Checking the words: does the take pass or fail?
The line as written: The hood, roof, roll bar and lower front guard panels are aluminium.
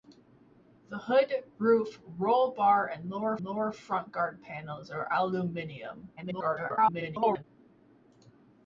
fail